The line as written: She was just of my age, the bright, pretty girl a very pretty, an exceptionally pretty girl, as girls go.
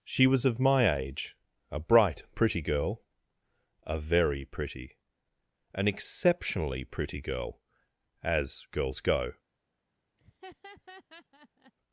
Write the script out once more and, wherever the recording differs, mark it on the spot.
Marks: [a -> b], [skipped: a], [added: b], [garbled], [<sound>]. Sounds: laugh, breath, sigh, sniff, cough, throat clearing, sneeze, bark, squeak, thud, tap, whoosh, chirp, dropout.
She was [skipped: just] of my age, [the -> a] bright, pretty girl a very pretty, an exceptionally pretty girl, as girls go. [laugh]